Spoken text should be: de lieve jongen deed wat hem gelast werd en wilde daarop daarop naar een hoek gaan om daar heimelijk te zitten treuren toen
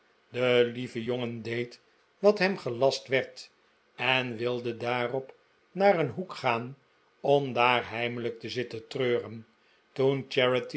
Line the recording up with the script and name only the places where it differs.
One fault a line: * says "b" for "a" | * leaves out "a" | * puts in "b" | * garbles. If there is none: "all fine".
* leaves out "daarop"